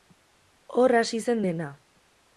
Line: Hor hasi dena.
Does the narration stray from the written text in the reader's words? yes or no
yes